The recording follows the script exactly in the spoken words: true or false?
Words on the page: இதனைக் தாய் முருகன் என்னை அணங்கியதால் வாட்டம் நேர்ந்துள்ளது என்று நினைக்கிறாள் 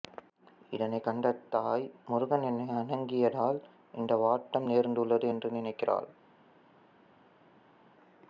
false